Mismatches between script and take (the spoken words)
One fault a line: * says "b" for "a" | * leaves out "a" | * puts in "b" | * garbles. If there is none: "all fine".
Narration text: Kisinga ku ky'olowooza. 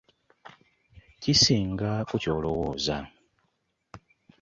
all fine